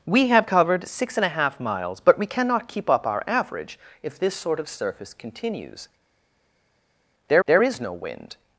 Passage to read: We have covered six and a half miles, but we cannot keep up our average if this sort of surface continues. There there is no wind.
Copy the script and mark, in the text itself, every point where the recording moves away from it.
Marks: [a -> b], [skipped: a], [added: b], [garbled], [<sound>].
We have covered six and a half miles, but we cannot keep up our average if this sort of surface continues. There there is no wind.